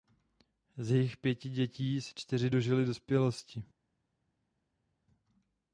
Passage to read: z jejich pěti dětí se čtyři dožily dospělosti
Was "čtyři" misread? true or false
false